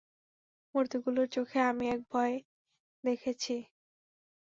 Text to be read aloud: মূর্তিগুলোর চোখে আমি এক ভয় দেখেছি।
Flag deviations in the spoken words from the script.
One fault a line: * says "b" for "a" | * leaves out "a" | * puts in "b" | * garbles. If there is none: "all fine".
all fine